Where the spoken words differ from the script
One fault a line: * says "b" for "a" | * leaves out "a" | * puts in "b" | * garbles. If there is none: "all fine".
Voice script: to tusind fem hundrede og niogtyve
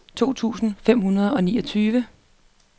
all fine